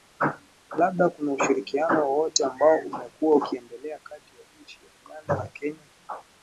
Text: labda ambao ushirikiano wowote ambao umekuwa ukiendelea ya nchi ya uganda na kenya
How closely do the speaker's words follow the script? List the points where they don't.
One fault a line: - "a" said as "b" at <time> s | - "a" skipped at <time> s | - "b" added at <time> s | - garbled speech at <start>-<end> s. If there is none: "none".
- "ambao" said as "kuna" at 1.1 s
- "kati" added at 4.0 s